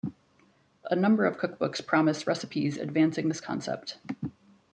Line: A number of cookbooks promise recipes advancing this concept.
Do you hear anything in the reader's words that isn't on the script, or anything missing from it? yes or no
no